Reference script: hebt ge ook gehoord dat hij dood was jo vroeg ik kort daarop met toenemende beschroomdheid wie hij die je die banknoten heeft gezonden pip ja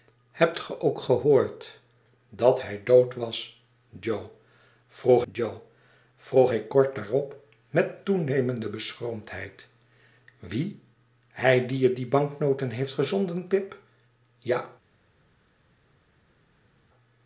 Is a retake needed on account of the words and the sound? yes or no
yes